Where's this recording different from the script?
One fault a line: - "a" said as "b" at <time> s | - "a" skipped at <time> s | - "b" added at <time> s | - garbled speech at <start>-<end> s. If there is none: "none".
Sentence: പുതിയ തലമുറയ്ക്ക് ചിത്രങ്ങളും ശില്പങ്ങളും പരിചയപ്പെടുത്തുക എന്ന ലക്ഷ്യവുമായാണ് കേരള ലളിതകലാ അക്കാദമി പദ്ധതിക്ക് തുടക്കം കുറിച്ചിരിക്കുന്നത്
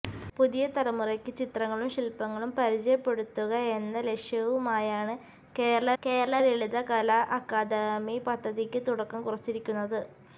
- "കേരള" added at 6.0 s